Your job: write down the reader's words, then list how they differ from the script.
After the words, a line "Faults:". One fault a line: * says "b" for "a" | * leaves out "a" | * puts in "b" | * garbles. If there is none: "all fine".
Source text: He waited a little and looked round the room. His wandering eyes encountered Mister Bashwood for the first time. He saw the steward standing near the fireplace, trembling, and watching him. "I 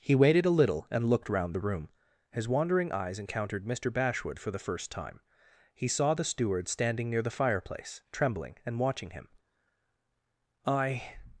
He waited a little and looked round the room. His wandering eyes encountered Mister Bashwood for the first time. He saw the steward standing near the fireplace, trembling, and watching him. "I
Faults:
all fine